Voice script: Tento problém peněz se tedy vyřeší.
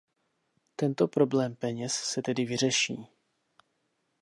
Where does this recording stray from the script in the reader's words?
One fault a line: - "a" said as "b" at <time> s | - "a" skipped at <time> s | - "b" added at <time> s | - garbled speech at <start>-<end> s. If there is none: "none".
none